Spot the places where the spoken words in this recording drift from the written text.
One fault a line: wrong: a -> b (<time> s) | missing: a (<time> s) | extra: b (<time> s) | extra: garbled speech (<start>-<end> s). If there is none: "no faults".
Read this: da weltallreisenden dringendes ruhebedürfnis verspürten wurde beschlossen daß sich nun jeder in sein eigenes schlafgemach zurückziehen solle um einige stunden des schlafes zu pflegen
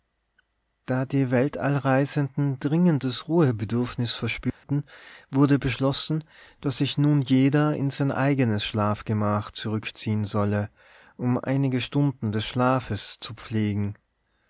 extra: die (1.1 s)